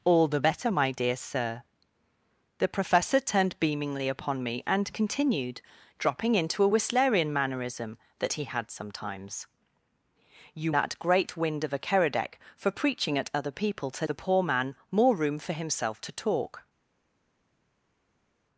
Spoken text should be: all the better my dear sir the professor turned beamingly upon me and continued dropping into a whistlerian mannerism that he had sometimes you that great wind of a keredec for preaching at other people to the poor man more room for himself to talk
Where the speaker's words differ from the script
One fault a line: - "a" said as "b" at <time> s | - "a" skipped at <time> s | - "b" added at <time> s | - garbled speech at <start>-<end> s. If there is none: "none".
none